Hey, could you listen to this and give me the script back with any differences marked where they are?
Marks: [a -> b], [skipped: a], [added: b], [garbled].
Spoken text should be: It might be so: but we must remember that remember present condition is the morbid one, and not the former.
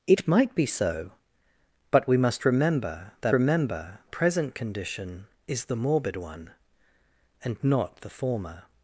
It might be so: but we must remember that remember present condition is the morbid one, and not the former.